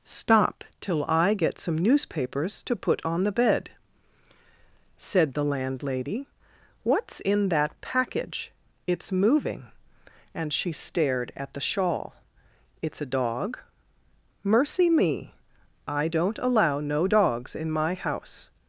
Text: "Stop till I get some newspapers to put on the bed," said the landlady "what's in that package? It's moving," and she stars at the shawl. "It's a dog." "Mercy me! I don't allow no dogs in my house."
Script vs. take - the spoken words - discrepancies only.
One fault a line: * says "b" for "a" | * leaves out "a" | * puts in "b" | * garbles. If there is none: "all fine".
* says "stared" for "stars"